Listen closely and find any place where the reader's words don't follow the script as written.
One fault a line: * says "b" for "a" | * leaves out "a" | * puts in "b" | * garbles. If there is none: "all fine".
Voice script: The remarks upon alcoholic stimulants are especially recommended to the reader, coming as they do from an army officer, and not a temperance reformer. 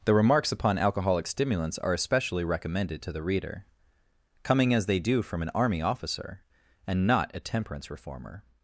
all fine